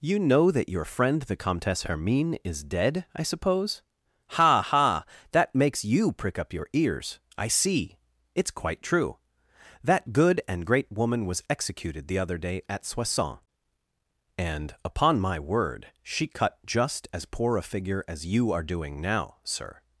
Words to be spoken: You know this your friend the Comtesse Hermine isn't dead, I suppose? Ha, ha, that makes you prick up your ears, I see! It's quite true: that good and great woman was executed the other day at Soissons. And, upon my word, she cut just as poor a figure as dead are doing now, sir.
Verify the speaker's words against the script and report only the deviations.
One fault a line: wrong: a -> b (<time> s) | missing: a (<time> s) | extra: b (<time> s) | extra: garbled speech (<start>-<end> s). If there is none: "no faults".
wrong: this -> that (0.5 s)
wrong: isn't -> is (2.4 s)
wrong: dead -> you (18.2 s)